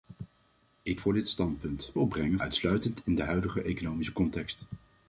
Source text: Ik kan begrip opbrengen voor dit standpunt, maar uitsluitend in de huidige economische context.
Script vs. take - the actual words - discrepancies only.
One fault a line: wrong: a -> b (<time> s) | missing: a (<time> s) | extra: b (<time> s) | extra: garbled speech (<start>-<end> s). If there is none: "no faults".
missing: kan begrip opbrengen (1.0 s)
wrong: maar -> opbrengen (2.0 s)